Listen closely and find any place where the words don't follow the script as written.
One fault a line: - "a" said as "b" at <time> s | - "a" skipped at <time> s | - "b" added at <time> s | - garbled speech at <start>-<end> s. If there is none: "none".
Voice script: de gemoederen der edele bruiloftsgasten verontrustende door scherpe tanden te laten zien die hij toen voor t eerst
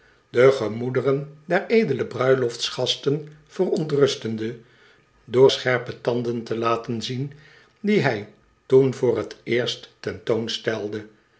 none